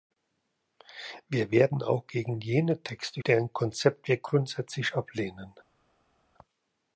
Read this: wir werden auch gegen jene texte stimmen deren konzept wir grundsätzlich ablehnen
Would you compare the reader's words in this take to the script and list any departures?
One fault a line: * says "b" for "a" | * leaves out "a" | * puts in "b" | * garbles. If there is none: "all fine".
* leaves out "stimmen"